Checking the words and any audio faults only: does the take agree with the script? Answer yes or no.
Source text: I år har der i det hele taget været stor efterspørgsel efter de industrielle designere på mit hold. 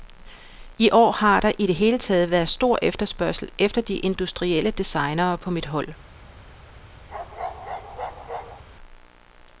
no